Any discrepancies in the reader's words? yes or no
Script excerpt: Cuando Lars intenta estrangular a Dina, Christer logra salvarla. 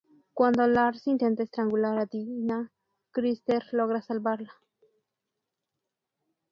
no